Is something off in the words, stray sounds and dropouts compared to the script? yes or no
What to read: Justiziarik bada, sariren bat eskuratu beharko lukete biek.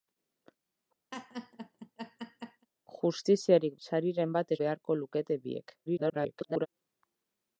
yes